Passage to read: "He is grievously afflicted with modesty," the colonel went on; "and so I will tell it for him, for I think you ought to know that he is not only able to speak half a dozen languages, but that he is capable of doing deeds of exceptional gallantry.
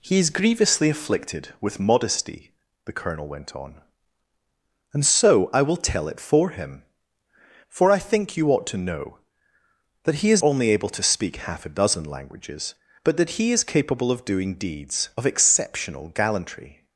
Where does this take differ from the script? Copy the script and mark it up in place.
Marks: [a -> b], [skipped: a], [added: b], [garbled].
"He is grievously afflicted with modesty," the colonel went on; "and so I will tell it for him, for I think you ought to know that he is [skipped: not] only able to speak half a dozen languages, but that he is capable of doing deeds of exceptional gallantry.